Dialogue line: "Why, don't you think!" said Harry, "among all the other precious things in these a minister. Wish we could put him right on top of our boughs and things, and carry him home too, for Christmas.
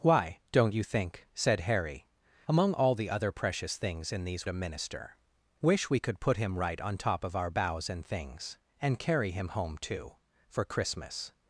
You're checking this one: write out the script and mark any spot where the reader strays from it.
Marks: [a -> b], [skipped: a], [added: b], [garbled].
"Why, don't you think!" said Harry, "among all the other precious things in these a minister. Wish we could put him right on top of our boughs and things, and carry him home too, for Christmas.